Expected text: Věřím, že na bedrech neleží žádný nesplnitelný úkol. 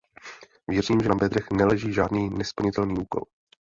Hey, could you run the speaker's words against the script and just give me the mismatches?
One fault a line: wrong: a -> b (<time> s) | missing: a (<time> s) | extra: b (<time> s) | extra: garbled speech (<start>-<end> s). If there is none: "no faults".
no faults